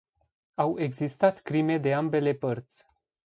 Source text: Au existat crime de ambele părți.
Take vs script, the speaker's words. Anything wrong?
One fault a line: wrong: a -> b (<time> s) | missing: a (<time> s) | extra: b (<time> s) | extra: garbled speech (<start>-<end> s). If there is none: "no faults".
no faults